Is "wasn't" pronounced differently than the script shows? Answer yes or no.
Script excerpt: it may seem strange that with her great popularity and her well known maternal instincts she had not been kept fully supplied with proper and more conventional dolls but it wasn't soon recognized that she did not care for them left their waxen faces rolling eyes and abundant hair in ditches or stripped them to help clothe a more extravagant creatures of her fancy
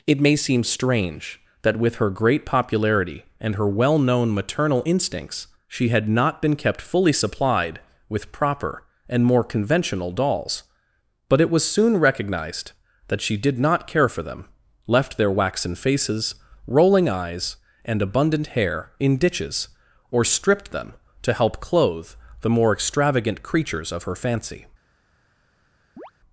yes